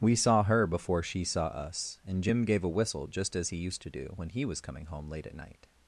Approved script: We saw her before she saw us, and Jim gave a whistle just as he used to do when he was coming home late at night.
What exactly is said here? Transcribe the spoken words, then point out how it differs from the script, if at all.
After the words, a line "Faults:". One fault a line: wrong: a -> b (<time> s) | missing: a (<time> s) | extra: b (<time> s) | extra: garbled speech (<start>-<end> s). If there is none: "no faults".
We saw her before she saw us, and Jim gave a whistle just as he used to do when he was coming home late at night.
Faults:
no faults